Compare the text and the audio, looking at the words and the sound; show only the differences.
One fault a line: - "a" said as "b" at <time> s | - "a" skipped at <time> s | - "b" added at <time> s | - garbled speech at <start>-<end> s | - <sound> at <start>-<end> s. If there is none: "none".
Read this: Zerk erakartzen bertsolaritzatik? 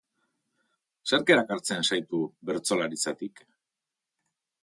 - "zaitu" added at 1.9 s